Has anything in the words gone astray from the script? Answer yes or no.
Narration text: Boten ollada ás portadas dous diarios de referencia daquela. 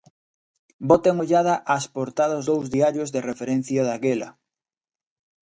no